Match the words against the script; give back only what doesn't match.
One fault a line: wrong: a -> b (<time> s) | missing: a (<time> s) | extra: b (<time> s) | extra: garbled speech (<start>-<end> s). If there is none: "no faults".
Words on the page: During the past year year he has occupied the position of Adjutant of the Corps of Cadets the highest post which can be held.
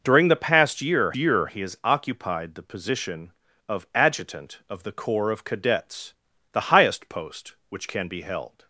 no faults